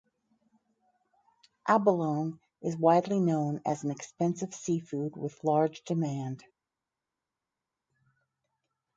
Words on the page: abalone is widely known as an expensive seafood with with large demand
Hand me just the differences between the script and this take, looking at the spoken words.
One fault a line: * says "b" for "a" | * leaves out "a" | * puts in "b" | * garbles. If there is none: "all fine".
* leaves out "with"